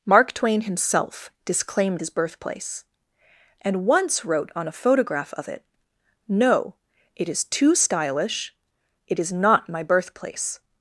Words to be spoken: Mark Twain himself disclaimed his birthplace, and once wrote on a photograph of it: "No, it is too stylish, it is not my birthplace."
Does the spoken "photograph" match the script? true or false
true